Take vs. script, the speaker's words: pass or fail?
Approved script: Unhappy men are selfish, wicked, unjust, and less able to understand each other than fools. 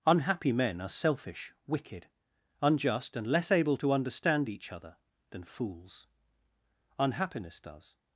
fail